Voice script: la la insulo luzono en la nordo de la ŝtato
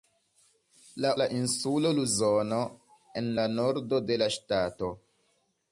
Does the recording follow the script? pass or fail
pass